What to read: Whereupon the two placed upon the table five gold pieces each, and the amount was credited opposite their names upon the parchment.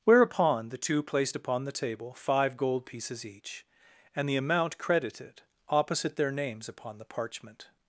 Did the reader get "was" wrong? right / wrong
wrong